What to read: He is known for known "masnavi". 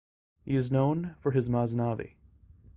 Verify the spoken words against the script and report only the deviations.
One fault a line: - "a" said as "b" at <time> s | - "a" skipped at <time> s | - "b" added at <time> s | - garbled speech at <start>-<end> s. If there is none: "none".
- "known" said as "his" at 1.3 s